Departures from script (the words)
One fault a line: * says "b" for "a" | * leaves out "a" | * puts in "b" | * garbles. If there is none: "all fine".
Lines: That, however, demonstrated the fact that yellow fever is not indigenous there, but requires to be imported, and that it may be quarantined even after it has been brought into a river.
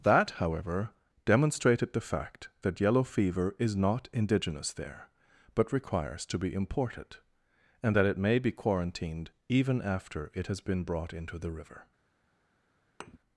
* says "the" for "a"